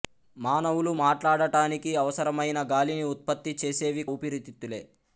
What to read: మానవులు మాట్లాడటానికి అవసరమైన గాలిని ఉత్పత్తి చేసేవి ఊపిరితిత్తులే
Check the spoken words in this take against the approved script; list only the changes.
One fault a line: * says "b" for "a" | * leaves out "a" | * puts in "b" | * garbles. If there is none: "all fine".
all fine